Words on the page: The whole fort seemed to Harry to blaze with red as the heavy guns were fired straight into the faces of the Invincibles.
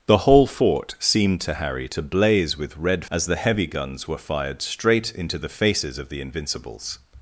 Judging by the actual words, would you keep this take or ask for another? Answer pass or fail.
pass